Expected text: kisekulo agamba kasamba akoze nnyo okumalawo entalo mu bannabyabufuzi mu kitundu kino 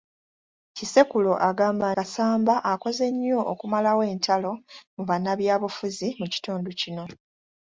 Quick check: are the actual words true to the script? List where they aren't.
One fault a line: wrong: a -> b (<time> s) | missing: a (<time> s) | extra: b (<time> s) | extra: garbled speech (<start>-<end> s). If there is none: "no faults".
no faults